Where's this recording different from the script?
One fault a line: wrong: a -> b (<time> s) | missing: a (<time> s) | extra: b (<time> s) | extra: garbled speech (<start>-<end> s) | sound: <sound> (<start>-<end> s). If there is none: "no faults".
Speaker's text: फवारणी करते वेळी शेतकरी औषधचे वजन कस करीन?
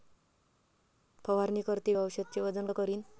missing: वेळी शेतकरी (1.9 s)
missing: कस (2.7 s)